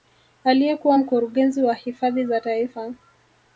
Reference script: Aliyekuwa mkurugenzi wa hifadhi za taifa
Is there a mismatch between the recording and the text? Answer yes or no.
no